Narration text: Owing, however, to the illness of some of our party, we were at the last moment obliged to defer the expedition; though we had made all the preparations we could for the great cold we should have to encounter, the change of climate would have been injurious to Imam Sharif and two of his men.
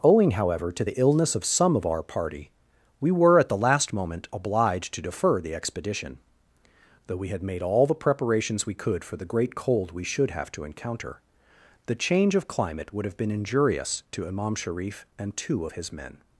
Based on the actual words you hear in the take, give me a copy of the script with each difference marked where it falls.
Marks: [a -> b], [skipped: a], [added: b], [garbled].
Owing, however, to the illness of some of our party, we were at the last moment obliged to defer the expedition; though we had made all the preparations we could for the great cold we should have to encounter, the change of climate would have been injurious to Imam Sharif and two of his men.